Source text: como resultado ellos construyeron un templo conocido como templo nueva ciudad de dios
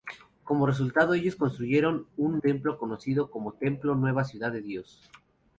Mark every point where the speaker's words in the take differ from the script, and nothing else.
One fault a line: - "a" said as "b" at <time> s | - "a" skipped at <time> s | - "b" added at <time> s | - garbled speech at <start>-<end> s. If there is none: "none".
none